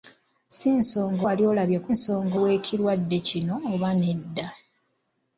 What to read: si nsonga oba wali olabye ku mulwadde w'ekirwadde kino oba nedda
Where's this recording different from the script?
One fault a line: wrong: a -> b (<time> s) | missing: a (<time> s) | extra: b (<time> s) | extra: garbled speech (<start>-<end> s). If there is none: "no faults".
missing: oba (1.2 s)
wrong: mulwadde -> nsonga (1.9 s)